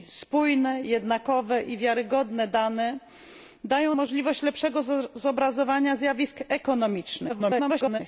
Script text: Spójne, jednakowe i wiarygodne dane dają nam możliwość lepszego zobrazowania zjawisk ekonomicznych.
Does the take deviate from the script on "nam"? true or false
true